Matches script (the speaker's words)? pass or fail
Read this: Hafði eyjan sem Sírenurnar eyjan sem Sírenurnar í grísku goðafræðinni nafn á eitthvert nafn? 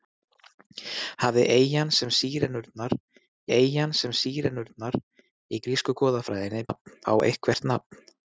pass